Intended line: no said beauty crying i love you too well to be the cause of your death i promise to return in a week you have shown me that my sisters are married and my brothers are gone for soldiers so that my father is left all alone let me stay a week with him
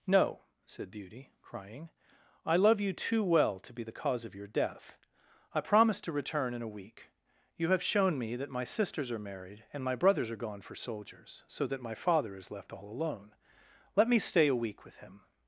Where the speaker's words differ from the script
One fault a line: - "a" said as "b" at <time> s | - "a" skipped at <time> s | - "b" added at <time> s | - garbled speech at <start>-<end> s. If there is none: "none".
none